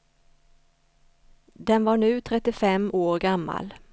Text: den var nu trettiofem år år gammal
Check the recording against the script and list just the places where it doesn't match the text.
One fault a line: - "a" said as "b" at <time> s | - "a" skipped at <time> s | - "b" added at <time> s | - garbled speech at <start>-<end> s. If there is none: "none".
- "år" skipped at 3.2 s